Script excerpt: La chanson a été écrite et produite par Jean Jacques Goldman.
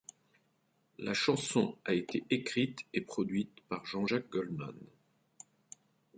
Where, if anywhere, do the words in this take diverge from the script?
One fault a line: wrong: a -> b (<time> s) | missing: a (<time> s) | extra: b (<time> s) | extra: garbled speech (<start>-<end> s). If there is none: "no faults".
no faults